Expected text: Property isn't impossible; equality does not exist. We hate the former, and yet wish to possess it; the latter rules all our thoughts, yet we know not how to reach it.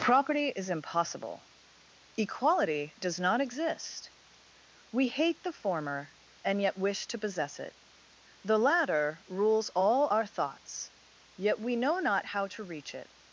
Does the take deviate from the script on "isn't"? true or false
true